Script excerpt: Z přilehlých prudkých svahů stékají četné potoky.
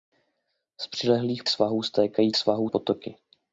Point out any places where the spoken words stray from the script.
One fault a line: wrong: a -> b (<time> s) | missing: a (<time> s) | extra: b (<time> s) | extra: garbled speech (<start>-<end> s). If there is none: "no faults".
missing: prudkých (1.4 s)
wrong: četné -> svahů (2.4 s)